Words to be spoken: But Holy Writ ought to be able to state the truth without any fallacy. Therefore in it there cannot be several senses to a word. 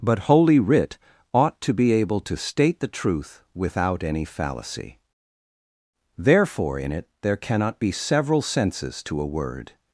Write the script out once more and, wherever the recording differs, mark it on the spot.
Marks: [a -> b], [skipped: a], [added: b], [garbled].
But Holy Writ ought to be able to state the truth without any fallacy. Therefore in it there cannot be several senses to a word.